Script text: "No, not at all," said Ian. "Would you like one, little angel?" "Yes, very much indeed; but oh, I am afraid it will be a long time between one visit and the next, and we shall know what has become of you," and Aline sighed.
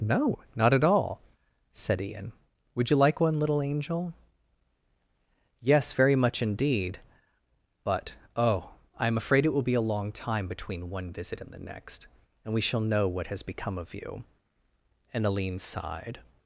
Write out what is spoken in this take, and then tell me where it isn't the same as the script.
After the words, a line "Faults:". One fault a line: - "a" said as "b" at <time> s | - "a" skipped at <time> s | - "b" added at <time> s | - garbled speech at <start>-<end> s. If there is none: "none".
"No, not at all," said Ian. "Would you like one, little angel?" "Yes, very much indeed; but oh, I am afraid it will be a long time between one visit and the next, and we shall know what has become of you," and Aline sighed.
Faults:
none